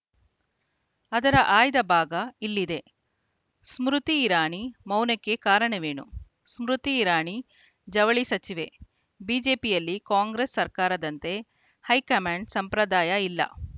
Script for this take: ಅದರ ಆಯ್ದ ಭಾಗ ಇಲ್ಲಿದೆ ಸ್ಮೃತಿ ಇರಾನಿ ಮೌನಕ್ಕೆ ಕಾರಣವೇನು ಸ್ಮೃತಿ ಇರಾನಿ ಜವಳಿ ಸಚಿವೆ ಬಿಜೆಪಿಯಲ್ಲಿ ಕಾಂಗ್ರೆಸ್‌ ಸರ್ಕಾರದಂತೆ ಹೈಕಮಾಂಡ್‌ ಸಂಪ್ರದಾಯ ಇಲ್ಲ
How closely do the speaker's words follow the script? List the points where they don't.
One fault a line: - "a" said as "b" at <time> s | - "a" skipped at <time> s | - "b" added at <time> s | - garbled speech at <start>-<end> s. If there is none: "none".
none